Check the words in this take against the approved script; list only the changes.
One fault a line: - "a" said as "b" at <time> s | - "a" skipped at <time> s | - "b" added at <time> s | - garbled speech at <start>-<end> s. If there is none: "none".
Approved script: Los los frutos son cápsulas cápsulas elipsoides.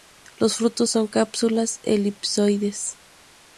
- "los" skipped at 0.6 s
- "cápsulas" skipped at 1.8 s